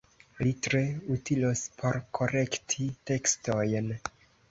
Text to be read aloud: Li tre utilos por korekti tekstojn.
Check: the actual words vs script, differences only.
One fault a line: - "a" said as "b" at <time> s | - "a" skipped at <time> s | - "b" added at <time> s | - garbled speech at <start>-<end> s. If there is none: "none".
none